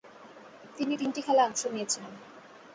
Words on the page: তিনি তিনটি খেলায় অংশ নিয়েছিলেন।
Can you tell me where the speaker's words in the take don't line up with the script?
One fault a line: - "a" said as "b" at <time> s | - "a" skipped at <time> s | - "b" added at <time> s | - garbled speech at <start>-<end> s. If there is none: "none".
none